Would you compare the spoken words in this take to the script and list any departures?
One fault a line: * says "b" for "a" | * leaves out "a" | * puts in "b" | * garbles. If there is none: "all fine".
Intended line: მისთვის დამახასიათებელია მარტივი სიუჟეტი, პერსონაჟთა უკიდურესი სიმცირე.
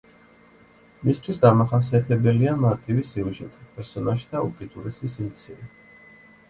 all fine